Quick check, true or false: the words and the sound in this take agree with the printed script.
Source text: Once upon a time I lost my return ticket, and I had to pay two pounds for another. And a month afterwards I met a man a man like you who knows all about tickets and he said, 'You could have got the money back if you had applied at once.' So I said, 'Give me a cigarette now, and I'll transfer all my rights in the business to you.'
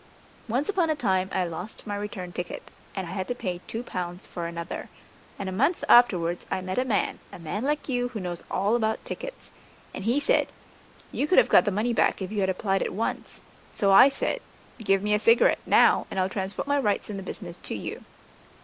false